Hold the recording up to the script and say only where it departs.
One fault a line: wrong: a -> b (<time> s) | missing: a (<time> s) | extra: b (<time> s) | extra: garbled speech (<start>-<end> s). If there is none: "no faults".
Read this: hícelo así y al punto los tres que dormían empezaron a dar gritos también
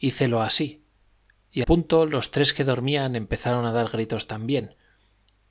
missing: al (1.6 s)